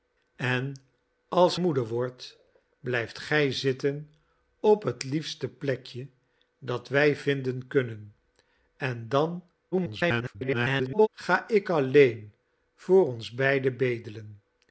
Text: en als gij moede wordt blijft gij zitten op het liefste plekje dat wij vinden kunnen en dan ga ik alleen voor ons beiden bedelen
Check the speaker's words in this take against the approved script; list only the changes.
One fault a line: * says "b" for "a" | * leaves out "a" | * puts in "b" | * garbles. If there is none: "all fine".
* leaves out "gij"
* garbles